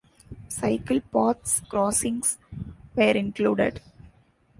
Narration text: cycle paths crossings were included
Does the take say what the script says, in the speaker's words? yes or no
yes